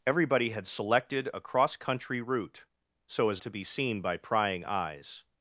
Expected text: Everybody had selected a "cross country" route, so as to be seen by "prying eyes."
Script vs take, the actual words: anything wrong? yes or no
no